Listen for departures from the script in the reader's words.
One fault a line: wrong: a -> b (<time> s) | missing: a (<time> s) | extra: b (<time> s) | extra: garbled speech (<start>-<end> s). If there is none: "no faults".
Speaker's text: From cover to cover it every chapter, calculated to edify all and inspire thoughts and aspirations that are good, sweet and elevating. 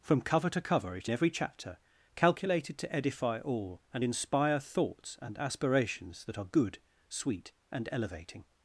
no faults